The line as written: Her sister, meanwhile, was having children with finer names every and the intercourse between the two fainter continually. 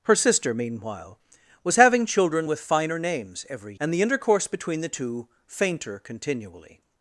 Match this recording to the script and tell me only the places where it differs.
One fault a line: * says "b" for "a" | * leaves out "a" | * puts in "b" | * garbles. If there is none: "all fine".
all fine